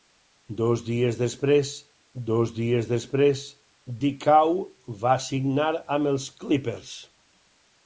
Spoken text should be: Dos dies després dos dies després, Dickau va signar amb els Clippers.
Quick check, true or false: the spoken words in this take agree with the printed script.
true